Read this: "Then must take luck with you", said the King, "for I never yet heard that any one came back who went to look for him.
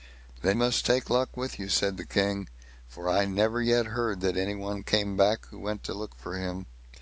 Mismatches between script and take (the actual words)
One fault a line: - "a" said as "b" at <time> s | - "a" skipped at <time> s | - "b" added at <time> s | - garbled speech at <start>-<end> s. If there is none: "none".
none